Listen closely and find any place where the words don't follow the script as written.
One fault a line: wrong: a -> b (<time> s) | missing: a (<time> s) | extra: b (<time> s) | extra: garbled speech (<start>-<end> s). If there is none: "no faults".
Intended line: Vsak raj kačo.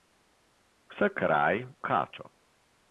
no faults